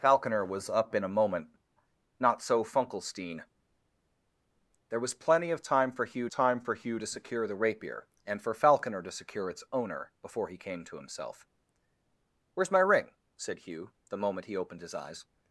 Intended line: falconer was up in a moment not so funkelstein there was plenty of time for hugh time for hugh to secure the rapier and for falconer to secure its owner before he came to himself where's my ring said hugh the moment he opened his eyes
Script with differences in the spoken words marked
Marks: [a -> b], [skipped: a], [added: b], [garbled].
falconer was up in a moment not so funkelstein there was plenty of time for hugh time for hugh to secure the rapier and for falconer to secure its owner before he came to himself where's my ring said hugh the moment he opened his eyes